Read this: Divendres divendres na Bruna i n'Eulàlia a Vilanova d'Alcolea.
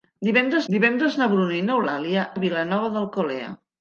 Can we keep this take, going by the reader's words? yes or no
yes